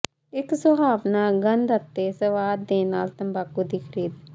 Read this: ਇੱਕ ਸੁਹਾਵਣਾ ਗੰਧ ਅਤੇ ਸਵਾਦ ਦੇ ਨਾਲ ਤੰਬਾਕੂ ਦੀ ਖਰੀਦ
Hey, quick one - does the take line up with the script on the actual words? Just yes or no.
yes